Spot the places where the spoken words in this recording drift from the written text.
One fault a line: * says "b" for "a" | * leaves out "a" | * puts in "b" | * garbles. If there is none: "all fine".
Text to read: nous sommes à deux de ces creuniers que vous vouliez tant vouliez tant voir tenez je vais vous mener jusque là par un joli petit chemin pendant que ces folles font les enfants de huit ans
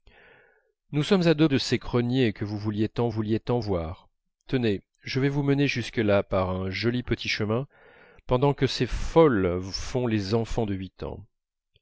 all fine